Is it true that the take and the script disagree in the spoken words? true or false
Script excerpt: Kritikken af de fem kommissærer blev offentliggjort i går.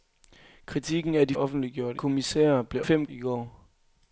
true